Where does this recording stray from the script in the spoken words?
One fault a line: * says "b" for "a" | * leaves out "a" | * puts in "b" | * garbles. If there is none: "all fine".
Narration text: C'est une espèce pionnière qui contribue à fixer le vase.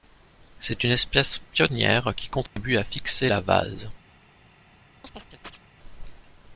* says "la" for "le"